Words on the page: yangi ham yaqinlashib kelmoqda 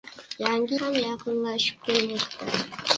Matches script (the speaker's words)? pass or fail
pass